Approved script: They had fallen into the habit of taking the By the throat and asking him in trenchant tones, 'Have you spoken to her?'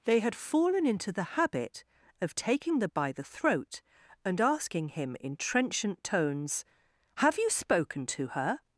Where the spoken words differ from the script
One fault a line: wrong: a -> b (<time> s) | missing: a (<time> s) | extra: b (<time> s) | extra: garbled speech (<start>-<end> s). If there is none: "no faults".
no faults